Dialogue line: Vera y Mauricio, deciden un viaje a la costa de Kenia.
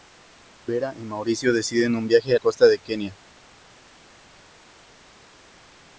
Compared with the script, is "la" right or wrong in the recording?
wrong